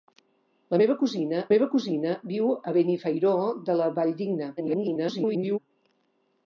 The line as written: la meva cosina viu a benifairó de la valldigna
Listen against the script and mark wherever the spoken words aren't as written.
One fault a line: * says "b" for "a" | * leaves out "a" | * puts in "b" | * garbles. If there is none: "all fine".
* puts in "meva cosina"
* garbles